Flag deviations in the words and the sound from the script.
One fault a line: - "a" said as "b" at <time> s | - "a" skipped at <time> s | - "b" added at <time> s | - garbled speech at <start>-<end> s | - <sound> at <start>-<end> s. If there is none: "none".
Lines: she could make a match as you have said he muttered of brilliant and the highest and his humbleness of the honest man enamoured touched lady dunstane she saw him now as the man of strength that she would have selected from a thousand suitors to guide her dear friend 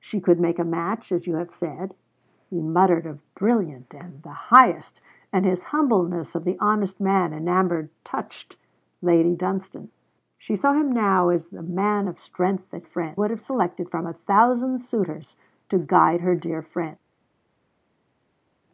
- "she" said as "friend" at 12.8 s